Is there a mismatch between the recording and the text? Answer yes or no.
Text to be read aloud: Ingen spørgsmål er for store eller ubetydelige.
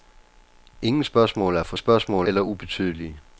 yes